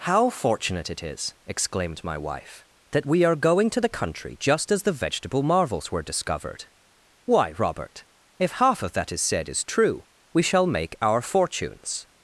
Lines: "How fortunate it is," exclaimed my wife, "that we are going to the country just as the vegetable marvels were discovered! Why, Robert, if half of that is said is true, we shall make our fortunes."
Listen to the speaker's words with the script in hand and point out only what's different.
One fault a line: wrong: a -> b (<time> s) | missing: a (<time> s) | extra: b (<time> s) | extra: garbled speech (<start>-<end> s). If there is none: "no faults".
no faults